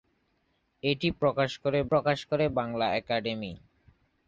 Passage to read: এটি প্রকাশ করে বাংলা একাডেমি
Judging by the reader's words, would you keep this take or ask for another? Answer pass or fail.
fail